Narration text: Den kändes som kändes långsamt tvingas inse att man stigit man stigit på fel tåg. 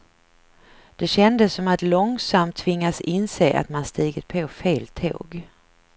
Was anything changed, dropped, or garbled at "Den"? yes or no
yes